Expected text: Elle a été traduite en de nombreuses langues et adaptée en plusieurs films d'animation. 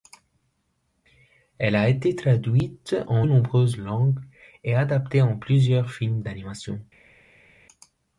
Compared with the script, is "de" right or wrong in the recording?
wrong